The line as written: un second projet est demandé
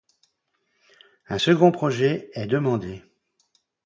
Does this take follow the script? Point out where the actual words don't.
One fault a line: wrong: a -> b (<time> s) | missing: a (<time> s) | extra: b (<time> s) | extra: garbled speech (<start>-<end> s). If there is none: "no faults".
no faults